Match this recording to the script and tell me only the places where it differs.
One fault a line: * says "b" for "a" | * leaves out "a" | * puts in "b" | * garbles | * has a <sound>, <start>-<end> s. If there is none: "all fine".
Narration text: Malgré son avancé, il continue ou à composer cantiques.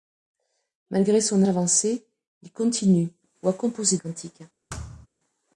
* has a thud, 4.7-5.1 s